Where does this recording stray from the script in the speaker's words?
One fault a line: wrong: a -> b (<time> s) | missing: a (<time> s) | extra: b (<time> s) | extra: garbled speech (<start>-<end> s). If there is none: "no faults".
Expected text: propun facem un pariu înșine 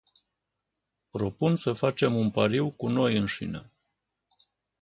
extra: să (1.6 s)
extra: cu noi (2.7 s)